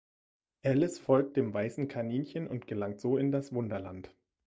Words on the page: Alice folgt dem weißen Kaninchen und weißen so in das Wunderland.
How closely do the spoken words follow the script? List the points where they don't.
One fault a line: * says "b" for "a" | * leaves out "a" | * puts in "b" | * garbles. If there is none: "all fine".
* says "gelangt" for "weißen"